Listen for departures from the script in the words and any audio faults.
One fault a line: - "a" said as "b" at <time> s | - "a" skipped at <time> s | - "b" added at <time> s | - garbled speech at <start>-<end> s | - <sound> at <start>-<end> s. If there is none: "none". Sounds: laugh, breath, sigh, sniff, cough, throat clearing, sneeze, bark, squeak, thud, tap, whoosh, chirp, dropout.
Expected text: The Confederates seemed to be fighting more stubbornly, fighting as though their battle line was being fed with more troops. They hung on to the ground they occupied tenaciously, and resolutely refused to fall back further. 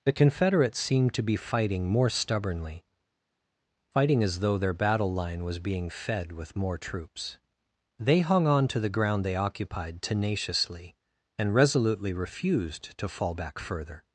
none